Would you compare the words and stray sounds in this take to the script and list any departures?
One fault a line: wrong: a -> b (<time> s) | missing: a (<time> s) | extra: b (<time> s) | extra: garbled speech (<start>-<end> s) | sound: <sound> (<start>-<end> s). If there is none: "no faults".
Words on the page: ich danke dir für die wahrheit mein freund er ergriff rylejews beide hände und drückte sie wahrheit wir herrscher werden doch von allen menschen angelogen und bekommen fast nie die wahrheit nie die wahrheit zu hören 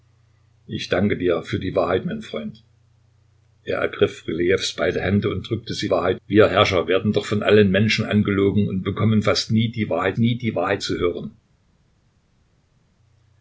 no faults